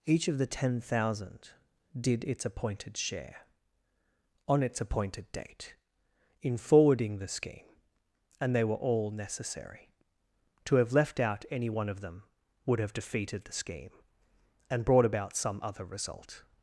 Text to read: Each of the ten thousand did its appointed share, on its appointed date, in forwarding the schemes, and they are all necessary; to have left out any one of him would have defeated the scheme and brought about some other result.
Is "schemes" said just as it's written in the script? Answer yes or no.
no